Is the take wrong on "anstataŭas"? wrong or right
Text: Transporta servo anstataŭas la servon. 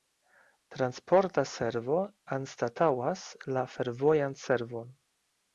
right